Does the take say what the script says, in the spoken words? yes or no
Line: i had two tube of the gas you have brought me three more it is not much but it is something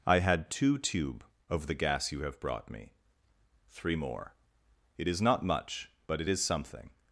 yes